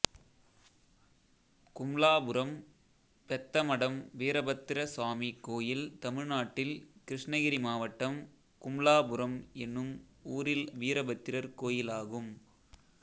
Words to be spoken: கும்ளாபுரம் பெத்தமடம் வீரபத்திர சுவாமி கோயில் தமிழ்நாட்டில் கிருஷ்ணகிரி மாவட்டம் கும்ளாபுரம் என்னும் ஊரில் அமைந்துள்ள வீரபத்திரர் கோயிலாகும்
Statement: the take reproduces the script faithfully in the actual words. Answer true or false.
false